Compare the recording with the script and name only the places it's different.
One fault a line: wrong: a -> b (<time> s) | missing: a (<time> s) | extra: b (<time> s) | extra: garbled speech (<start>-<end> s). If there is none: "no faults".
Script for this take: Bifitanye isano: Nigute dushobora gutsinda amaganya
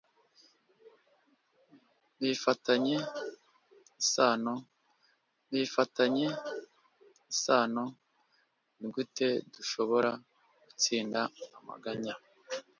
extra: bifitanye isano (5.5 s)